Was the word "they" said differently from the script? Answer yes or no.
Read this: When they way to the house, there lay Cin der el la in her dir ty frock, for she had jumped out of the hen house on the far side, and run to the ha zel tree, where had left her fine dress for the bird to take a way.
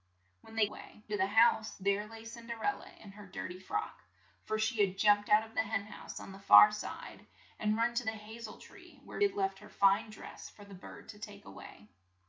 no